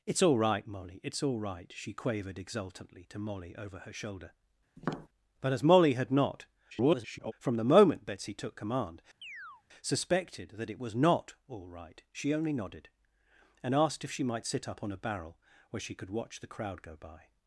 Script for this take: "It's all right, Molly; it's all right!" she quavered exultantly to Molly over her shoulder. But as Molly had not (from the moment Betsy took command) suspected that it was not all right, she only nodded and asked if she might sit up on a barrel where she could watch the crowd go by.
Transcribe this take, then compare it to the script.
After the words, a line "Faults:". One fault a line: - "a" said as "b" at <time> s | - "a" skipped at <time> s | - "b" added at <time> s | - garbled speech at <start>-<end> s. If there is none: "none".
"It's all right, Molly; it's all right!" she quavered exultantly to Molly over her shoulder. But as Molly had not [garbled] (from the moment Betsy took command) suspected that it was not all right, she only nodded and asked if she might sit up on a barrel where she could watch the crowd go by.
Faults:
- garbled speech at 6.7-7.3 s